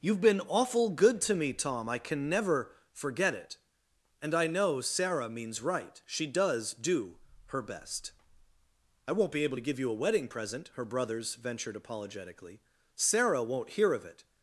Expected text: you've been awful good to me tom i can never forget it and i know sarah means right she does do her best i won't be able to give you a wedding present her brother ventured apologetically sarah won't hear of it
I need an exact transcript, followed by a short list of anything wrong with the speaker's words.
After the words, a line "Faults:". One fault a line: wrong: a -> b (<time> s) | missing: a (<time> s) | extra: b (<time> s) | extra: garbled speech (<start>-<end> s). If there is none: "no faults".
you've been awful good to me tom i can never forget it and i know sarah means right she does do her best i won't be able to give you a wedding present her brothers ventured apologetically sarah won't hear of it
Faults:
wrong: brother -> brothers (10.8 s)